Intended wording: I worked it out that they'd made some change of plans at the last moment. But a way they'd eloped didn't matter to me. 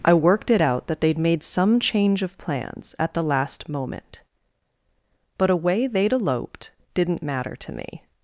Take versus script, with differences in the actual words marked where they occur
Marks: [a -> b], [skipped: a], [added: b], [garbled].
I worked it out that they'd made some change of plans at the last moment. But a way they'd eloped didn't matter to me.